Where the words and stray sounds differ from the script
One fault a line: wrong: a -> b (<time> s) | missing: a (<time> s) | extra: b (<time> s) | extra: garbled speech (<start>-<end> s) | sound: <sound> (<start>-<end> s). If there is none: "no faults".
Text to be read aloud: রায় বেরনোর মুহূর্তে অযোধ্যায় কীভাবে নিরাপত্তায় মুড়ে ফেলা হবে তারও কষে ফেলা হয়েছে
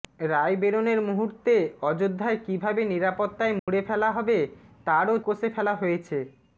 sound: dropout (3.6-3.7 s)